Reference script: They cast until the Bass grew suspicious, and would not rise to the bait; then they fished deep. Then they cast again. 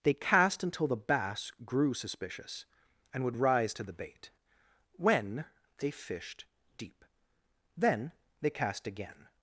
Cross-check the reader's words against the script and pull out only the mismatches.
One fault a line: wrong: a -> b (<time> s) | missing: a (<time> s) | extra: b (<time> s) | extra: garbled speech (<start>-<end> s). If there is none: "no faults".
missing: not (3.4 s)
wrong: then -> when (4.9 s)